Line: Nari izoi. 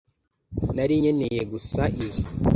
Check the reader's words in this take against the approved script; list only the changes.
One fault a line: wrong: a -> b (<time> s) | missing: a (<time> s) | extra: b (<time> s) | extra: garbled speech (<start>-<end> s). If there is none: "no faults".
extra: nkeneye gusa (1.0 s)